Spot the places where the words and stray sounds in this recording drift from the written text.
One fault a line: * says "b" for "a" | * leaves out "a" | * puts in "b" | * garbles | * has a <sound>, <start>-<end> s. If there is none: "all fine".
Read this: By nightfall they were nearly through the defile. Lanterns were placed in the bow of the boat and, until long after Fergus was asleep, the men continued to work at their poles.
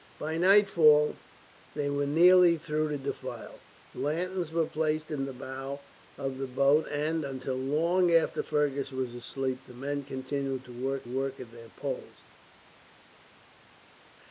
* puts in "work"